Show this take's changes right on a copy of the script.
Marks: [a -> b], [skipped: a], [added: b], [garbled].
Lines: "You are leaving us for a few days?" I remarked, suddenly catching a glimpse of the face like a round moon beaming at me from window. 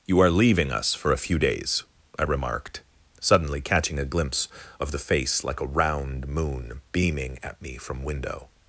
"You are leaving us for a few days?" I remarked, suddenly catching a glimpse of the face like a round moon beaming at me from window.